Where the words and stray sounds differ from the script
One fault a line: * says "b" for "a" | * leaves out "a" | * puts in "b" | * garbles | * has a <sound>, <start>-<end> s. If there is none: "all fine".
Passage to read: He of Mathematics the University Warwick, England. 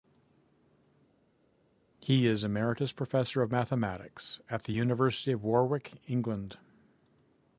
* puts in "is Emeritus Professor"
* puts in "at"
* puts in "of"